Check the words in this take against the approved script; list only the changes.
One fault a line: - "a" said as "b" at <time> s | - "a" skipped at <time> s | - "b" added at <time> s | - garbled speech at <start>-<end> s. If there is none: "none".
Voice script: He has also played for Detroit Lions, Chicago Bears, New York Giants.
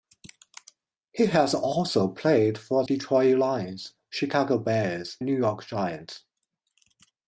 none